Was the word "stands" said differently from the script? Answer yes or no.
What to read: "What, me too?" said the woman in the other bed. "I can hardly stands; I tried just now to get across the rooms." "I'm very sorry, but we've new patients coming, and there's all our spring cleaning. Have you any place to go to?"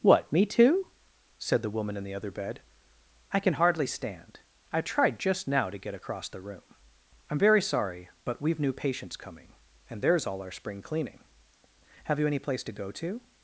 yes